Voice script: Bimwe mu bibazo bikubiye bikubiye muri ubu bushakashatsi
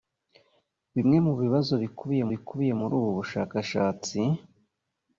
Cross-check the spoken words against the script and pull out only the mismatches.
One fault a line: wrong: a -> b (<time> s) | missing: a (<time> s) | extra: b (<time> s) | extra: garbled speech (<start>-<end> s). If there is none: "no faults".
no faults